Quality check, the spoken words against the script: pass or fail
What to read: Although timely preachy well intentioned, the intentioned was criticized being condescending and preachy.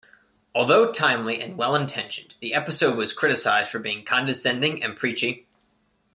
fail